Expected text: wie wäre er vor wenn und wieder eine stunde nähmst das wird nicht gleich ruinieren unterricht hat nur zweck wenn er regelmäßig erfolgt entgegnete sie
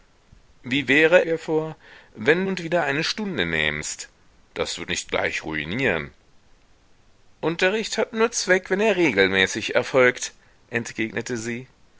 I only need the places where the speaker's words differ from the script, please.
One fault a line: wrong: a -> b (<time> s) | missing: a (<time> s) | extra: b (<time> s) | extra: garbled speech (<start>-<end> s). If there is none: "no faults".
no faults